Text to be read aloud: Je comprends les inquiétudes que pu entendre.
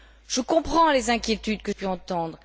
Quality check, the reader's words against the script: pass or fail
pass